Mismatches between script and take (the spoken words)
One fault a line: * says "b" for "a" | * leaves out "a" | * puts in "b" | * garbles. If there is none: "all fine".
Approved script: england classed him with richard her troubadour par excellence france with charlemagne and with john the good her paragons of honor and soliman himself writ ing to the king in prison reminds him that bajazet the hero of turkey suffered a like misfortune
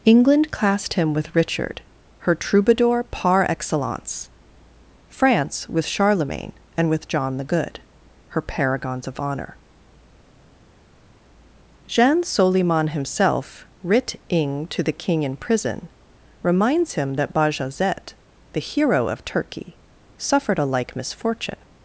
* says "jean" for "and"